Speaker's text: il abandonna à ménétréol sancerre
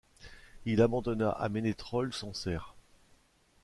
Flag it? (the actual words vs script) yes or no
no